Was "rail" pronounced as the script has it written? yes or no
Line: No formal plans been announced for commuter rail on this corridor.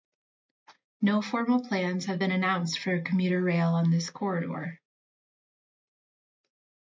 yes